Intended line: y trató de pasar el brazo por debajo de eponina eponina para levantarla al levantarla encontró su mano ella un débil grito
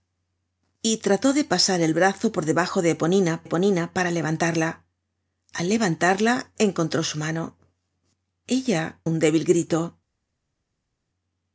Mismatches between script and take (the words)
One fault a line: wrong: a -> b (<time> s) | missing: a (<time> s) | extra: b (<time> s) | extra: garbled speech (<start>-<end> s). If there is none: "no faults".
no faults